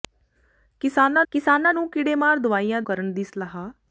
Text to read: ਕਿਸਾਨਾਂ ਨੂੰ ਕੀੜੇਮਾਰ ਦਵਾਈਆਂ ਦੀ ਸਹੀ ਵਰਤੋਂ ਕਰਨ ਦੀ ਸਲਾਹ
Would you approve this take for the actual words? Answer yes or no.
no